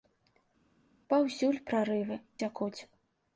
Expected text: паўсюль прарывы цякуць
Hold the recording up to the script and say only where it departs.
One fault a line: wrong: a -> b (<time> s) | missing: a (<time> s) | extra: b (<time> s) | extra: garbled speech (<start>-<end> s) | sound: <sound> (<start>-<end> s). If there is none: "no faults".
no faults